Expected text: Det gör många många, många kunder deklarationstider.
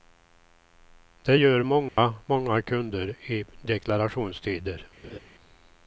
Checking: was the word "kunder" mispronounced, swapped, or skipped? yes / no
yes